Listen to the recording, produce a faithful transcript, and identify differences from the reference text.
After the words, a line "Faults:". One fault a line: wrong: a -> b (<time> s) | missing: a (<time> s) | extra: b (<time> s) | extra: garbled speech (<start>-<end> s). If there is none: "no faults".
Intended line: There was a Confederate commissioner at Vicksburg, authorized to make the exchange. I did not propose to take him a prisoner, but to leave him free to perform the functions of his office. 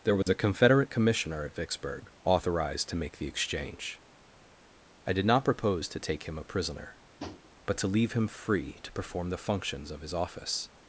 There was a Confederate commissioner at Vicksburg, authorized to make the exchange. I did not propose to take him a prisoner, but to leave him free to perform the functions of his office.
Faults:
no faults